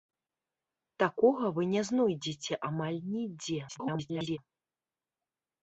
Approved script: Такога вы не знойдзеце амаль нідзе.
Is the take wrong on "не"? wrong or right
right